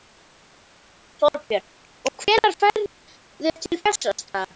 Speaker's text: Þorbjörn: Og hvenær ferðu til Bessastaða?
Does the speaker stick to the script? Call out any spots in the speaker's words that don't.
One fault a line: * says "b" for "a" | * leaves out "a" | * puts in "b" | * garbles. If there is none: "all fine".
all fine